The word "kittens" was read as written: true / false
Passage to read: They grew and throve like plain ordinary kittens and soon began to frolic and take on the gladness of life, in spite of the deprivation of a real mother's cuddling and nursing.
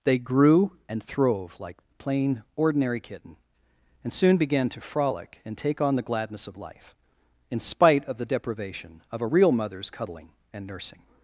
false